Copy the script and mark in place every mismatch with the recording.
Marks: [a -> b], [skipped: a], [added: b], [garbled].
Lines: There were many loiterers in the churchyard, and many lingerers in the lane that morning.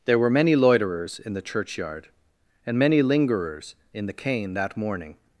There were many loiterers in the churchyard, and many lingerers in the [lane -> cane] that morning.